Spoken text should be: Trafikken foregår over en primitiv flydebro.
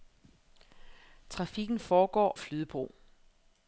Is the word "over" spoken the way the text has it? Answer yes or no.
no